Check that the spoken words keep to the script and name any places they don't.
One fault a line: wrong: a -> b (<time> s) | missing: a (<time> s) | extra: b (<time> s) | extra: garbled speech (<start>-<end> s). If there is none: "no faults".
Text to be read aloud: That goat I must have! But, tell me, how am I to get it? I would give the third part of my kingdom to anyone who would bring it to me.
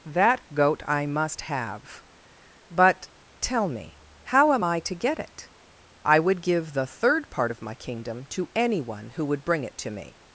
no faults